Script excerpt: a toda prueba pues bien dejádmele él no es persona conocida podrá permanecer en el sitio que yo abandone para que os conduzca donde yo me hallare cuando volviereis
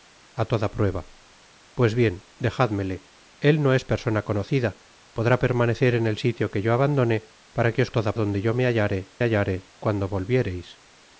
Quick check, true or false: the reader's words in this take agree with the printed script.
false